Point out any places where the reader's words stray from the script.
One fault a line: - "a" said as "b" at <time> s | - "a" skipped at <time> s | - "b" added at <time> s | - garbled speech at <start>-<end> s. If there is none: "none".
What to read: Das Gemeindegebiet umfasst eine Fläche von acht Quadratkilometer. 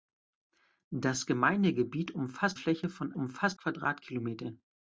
- "eine" skipped at 2.6 s
- "acht" said as "umfasst" at 3.2 s